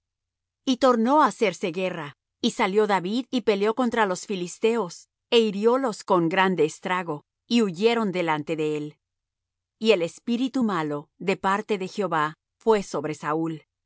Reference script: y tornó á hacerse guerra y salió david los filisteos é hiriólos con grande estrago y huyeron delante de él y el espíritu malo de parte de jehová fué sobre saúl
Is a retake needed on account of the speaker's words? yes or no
yes